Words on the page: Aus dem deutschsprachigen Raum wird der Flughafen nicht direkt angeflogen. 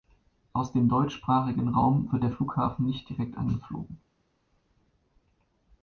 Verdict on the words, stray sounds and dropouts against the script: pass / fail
pass